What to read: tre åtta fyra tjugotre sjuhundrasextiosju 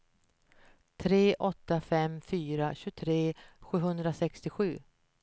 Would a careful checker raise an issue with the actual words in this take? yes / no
yes